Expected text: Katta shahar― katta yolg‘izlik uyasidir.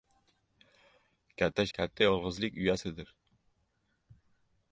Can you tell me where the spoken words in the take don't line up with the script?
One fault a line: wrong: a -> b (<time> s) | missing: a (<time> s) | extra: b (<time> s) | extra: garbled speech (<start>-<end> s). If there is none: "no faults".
missing: shahar (1.6 s)